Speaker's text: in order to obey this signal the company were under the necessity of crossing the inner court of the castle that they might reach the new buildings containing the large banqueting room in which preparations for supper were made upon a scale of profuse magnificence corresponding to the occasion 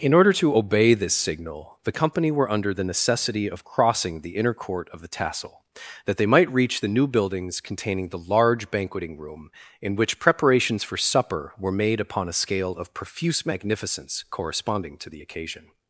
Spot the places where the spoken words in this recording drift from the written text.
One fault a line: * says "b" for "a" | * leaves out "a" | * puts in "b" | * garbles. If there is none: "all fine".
* says "tassel" for "castle"